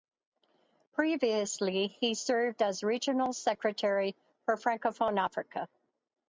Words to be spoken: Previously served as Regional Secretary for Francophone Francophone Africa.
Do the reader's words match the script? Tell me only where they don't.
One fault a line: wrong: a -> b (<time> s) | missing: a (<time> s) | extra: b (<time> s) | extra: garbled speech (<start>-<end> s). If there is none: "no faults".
extra: he (1.9 s)
missing: Francophone (5.2 s)